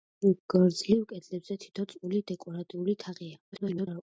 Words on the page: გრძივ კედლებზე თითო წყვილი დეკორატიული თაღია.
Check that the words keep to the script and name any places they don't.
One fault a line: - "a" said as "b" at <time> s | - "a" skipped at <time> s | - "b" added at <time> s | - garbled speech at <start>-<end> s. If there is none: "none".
- garbled speech at 3.5-4.0 s